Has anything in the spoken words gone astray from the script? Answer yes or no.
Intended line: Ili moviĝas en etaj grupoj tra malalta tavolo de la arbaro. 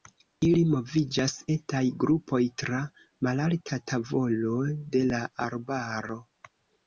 yes